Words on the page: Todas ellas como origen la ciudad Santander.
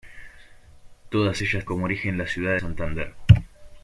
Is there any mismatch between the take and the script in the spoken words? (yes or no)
no